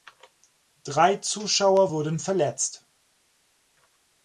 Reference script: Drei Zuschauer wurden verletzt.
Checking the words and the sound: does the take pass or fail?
pass